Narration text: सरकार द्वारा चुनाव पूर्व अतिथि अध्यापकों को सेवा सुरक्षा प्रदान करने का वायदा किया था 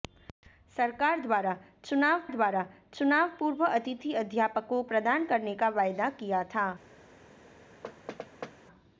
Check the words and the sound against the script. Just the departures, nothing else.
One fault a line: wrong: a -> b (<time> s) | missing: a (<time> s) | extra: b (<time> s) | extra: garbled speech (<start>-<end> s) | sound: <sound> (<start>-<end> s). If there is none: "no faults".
extra: द्वारा चुनाव (2.3 s)
missing: को सेवा सुरक्षा (4.8 s)
sound: thud (7.8-8.6 s)